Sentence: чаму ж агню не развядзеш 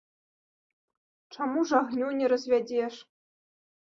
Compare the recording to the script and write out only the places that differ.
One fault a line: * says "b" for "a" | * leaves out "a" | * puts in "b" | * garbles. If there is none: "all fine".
all fine